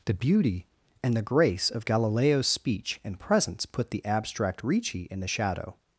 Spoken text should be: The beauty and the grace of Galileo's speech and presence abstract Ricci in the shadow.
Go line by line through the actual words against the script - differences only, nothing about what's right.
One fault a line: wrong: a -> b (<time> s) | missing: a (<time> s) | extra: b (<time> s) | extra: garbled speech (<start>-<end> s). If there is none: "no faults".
extra: put the (3.7 s)